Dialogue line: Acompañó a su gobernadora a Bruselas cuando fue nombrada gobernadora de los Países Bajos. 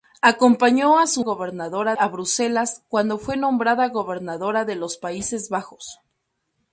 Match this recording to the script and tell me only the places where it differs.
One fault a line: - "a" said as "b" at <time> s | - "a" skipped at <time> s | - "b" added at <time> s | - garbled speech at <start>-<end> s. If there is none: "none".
none